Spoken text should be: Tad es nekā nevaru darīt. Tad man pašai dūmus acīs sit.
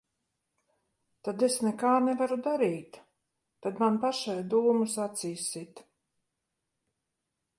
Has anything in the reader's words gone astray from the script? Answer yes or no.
no